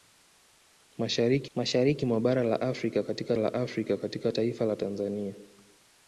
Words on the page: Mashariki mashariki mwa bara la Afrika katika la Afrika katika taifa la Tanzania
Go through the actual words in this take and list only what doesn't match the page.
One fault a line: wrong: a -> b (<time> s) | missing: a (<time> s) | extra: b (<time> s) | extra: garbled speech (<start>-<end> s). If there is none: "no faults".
no faults